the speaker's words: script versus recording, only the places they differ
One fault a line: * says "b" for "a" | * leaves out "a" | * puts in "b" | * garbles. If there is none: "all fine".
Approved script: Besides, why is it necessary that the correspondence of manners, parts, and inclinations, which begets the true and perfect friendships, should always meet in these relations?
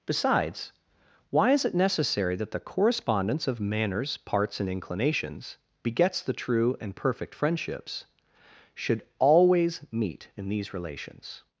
* leaves out "which"